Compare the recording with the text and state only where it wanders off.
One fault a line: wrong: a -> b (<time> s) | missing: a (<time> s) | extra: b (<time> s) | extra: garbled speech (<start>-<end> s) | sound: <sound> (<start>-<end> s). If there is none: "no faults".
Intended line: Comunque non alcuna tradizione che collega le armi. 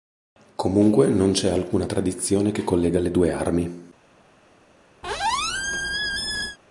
extra: c'è (1.3 s)
extra: due (3.1 s)
sound: squeak (5.0-6.6 s)